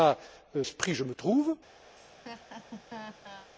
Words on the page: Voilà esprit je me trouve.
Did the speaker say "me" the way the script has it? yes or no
yes